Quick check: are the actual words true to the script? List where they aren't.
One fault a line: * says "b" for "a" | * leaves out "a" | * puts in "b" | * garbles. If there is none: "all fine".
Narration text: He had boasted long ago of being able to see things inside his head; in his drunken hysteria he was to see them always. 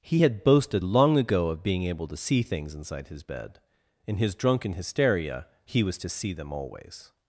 * says "bed" for "head"